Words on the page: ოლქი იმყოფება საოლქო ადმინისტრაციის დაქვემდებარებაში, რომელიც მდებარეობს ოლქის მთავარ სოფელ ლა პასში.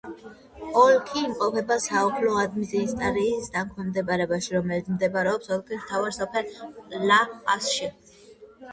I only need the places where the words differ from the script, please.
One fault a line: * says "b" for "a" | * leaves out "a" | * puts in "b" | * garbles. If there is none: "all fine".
all fine